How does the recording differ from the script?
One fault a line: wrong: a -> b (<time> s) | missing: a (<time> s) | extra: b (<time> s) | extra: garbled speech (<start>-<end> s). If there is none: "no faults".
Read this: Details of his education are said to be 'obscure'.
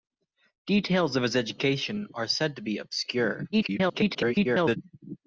extra: garbled speech (3.5-4.8 s)